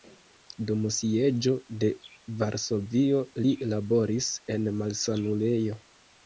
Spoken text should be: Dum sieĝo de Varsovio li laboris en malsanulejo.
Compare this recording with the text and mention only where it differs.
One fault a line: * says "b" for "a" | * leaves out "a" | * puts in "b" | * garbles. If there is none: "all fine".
all fine